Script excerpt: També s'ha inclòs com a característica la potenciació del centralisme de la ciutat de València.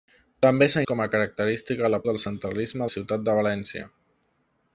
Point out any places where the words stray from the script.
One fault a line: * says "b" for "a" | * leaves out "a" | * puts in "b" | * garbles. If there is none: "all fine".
* leaves out "inclòs"
* leaves out "potenciació"
* leaves out "de"